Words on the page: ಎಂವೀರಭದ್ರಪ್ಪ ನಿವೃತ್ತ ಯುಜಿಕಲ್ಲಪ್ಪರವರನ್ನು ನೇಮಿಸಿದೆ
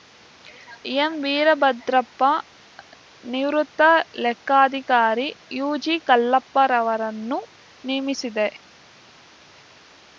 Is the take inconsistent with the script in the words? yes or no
yes